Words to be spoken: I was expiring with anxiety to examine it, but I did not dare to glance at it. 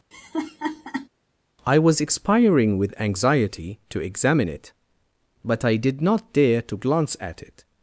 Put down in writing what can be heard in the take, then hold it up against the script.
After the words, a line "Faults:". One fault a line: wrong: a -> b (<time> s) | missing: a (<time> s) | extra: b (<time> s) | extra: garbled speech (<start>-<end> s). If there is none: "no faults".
I was expiring with anxiety to examine it, but I did not dare to glance at it.
Faults:
no faults